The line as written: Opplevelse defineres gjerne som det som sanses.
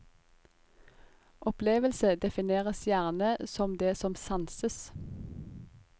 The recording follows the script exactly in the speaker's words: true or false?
true